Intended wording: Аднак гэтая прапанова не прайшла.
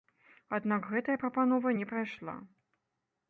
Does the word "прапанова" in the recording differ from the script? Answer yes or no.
no